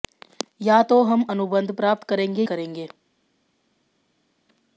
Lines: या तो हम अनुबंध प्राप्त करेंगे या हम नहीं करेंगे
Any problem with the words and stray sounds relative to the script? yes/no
yes